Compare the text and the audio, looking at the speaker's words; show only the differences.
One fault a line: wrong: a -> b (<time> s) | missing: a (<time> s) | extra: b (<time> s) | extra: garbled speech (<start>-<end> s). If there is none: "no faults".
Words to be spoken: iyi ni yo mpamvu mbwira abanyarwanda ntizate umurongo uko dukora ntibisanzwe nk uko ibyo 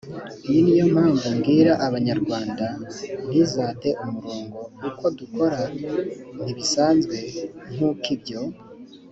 no faults